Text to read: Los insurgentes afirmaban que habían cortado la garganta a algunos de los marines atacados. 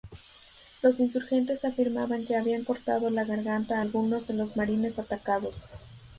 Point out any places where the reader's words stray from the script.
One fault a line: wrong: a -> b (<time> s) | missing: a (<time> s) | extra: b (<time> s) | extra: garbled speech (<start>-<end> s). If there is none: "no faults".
no faults